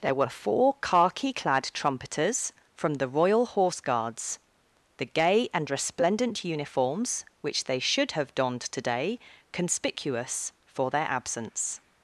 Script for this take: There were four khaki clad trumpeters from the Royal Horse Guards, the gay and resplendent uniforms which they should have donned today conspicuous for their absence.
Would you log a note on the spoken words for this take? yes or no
no